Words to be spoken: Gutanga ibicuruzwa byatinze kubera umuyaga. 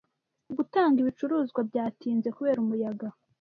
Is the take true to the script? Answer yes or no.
yes